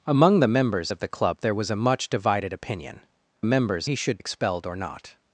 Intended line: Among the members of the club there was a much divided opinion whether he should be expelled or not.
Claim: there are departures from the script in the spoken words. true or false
true